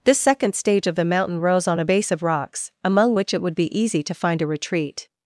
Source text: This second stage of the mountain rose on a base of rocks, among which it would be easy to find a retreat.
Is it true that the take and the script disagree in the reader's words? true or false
false